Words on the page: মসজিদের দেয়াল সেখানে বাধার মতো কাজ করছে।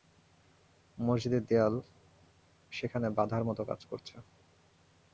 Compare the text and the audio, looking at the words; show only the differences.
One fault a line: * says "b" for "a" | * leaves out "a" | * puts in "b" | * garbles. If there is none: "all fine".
all fine